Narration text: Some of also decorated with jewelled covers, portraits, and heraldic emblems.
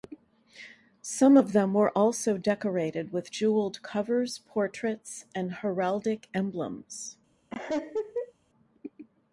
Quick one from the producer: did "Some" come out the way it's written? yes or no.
yes